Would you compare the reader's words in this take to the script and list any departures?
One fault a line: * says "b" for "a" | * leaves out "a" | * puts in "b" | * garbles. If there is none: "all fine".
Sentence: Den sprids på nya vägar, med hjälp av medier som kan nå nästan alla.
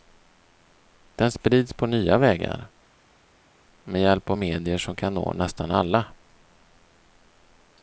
all fine